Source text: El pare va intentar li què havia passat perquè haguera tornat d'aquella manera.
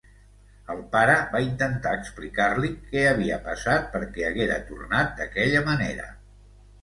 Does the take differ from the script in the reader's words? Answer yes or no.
yes